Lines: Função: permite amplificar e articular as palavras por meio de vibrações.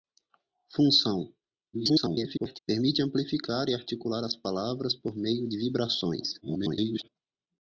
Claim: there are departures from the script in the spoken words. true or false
true